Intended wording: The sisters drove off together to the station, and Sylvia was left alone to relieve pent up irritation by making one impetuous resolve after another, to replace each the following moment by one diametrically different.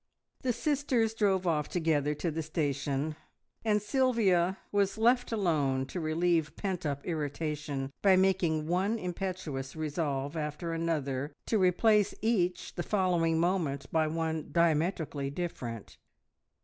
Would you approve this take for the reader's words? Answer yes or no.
yes